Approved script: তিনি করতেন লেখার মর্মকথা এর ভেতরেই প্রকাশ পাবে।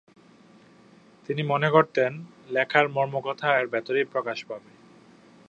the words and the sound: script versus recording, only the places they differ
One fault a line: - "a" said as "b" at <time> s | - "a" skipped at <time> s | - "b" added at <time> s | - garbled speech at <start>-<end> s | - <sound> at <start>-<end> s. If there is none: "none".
- "মনে" added at 1.4 s